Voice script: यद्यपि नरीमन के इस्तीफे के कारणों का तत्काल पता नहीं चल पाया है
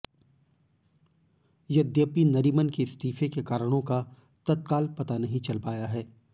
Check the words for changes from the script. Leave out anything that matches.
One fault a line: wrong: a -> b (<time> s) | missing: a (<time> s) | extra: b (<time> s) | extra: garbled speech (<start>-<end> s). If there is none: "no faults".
no faults